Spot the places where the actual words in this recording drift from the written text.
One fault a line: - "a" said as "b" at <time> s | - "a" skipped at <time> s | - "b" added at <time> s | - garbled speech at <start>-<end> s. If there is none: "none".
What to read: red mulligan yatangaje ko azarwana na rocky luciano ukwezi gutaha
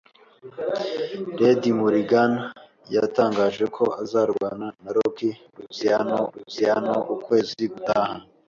- "luciano" added at 6.3 s